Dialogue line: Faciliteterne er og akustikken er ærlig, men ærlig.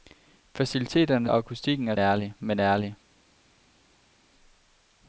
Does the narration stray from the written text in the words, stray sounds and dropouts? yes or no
no